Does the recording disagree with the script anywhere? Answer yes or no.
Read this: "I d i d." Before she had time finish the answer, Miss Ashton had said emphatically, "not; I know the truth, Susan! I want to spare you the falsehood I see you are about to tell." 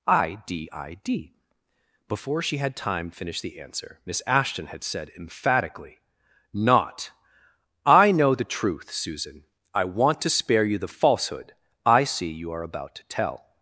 no